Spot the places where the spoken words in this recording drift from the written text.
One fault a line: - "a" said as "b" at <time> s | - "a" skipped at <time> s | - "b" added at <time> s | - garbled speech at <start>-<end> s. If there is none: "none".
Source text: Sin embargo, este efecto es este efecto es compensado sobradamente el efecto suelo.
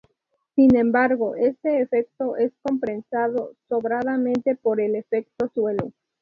- "este efecto es" skipped at 2.5 s
- "por" added at 4.5 s